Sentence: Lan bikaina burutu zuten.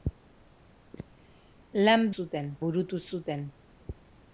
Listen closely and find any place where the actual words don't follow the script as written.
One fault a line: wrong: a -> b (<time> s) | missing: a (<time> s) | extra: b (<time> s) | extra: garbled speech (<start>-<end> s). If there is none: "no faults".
wrong: bikaina -> zuten (2.2 s)